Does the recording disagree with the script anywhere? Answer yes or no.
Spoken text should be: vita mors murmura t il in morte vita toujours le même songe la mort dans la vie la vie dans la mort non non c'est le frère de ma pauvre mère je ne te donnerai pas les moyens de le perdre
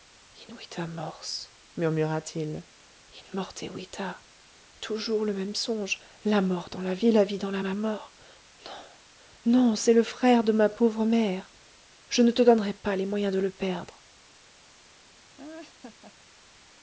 yes